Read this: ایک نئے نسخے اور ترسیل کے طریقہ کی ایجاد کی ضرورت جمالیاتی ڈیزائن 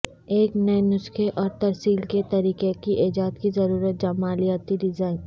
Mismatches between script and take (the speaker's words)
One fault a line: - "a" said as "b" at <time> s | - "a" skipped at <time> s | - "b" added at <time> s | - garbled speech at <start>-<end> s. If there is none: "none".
none